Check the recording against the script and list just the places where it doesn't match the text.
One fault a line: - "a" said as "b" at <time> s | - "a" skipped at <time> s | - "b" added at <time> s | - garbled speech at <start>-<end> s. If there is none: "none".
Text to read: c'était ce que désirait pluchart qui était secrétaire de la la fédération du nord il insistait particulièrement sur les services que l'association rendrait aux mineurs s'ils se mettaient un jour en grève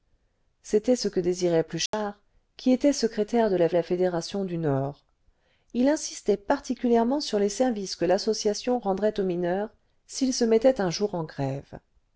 none